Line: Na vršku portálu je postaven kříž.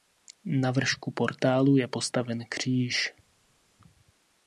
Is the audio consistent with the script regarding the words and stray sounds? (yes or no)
yes